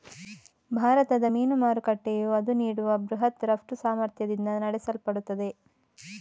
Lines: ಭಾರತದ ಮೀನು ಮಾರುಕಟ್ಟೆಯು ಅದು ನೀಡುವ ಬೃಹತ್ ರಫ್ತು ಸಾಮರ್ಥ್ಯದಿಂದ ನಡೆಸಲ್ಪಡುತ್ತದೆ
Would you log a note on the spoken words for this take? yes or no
no